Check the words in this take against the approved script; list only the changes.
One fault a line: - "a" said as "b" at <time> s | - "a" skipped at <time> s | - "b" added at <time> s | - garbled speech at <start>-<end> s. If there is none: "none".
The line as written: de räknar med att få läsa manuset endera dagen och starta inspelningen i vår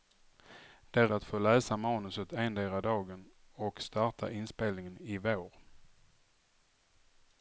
- "räknar med" skipped at 1.1 s